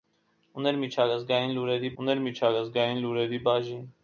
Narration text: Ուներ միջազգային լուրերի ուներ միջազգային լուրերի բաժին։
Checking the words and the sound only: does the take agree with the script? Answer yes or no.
yes